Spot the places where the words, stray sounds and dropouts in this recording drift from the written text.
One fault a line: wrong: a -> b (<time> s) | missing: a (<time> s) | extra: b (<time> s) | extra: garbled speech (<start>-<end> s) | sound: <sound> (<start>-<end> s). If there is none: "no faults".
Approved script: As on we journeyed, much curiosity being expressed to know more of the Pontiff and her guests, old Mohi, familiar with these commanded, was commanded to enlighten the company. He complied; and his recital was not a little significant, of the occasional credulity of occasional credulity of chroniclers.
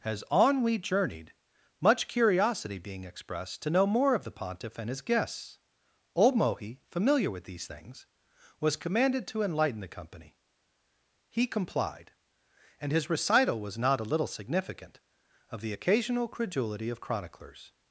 wrong: her -> his (4.9 s)
wrong: commanded -> things (7.6 s)
missing: occasional credulity of (17.0 s)